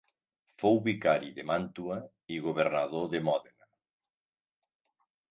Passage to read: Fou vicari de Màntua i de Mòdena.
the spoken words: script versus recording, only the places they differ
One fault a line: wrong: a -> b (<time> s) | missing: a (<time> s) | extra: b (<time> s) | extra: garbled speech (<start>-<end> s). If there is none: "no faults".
extra: governador (2.5 s)